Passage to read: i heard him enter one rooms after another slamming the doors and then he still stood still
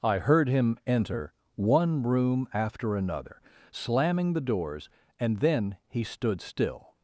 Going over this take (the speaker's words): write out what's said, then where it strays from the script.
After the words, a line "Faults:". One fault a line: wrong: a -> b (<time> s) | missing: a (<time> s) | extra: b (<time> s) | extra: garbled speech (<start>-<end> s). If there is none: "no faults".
i heard him enter one room after another slamming the doors and then he stood still
Faults:
wrong: rooms -> room (2.0 s)
missing: still (6.0 s)